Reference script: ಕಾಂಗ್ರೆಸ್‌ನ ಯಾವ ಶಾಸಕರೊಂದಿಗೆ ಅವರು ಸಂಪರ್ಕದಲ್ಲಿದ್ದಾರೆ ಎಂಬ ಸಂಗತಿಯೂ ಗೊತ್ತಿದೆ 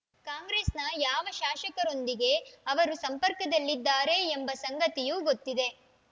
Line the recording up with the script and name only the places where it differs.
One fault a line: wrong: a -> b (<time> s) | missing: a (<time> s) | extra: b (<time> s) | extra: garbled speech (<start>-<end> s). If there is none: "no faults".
no faults